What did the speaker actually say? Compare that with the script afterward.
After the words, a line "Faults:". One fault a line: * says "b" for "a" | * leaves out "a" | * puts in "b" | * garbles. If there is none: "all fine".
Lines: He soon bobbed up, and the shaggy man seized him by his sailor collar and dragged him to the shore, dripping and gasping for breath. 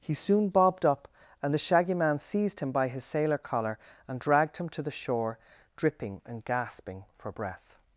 He soon bobbed up, and the shaggy man seized him by his sailor collar and dragged him to the shore, dripping and gasping for breath.
Faults:
all fine